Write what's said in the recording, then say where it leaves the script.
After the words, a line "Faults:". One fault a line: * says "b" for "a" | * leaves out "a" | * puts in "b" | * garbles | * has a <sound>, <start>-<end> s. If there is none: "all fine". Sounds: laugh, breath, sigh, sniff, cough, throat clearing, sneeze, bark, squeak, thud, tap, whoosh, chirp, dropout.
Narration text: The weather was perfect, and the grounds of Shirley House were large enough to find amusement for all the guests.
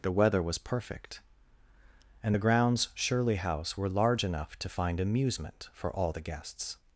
The weather was perfect, and the grounds Shirley House were large enough to find amusement for all the guests.
Faults:
* leaves out "of"